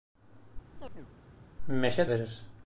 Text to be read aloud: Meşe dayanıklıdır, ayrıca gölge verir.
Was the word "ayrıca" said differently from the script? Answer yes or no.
yes